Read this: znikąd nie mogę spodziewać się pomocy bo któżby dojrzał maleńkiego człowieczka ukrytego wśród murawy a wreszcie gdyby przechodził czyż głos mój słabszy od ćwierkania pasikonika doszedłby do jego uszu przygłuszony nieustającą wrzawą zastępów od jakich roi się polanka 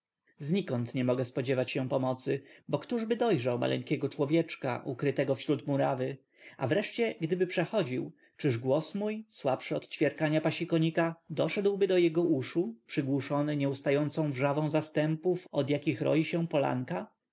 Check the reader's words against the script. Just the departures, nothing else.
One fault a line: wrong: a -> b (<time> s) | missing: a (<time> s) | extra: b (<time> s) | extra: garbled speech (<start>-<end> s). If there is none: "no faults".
no faults